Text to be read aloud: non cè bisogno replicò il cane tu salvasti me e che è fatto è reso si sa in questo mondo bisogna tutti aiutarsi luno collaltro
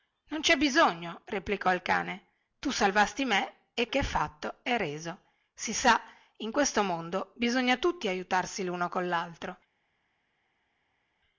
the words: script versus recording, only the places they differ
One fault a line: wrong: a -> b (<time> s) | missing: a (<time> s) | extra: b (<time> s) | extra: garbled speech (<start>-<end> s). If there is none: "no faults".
no faults